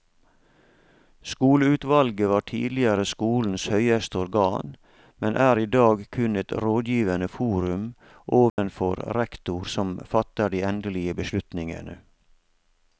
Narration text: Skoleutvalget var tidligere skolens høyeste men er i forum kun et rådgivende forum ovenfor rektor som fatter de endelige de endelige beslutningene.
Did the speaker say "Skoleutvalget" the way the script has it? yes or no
yes